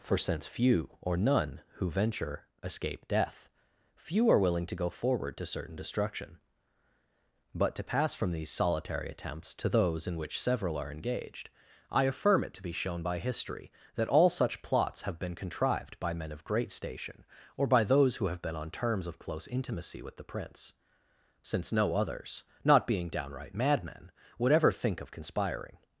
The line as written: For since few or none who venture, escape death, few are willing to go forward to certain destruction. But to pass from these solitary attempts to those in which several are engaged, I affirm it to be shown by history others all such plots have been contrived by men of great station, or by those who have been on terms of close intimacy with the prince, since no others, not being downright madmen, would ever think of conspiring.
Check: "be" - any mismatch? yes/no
no